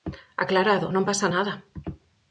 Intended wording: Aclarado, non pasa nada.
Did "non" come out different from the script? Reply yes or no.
no